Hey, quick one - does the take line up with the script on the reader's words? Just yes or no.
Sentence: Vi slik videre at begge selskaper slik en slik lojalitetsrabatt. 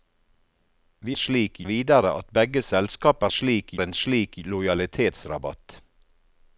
yes